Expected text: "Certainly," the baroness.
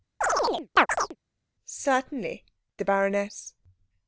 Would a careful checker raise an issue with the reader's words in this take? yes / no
no